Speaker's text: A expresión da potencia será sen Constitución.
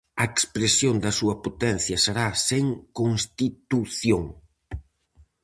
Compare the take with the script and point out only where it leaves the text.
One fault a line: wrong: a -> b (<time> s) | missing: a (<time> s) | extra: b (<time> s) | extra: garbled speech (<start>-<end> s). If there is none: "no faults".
extra: súa (1.2 s)